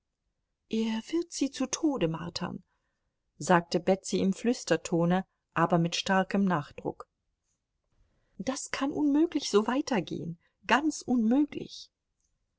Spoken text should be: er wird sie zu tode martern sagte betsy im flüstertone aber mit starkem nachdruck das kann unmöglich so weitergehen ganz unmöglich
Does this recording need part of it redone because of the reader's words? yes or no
no